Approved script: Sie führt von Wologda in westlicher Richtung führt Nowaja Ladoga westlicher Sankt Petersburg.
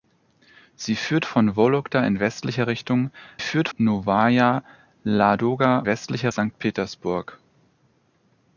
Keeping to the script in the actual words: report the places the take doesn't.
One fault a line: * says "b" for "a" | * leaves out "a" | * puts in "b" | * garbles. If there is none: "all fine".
all fine